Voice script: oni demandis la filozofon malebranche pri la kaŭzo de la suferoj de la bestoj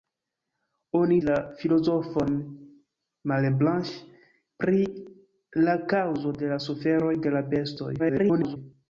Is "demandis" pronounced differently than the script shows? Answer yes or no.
yes